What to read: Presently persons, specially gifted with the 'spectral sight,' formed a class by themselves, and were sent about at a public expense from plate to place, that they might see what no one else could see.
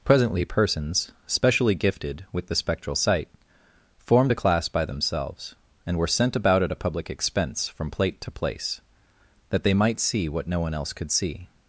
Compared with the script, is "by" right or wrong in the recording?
right